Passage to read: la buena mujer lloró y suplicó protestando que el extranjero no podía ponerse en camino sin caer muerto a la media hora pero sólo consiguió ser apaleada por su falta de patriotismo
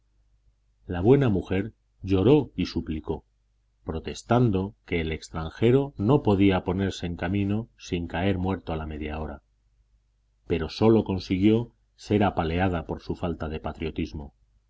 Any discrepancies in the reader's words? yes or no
no